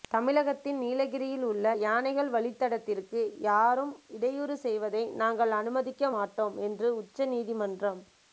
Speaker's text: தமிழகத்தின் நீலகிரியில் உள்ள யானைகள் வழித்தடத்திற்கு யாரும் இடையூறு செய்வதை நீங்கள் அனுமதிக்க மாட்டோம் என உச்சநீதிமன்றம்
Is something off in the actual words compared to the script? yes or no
yes